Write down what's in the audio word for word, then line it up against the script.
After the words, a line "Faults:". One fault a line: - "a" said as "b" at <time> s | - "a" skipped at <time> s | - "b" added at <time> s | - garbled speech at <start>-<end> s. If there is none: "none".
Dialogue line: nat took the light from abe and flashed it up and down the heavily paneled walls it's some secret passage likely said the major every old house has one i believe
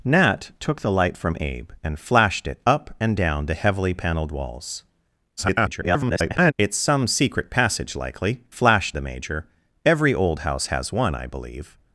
nat took the light from abe and flashed it up and down the heavily paneled walls [garbled] it's some secret passage likely flashed the major every old house has one i believe
Faults:
- garbled speech at 5.4-6.5 s
- "said" said as "flashed" at 8.5 s